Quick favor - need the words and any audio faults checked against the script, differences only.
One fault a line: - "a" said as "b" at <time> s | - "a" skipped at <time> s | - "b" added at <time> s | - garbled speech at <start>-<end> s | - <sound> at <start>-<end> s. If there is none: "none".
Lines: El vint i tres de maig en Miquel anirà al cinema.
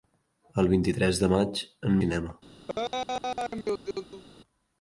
- "Miquel anirà al" skipped at 2.0 s
- laugh at 2.7-4.2 s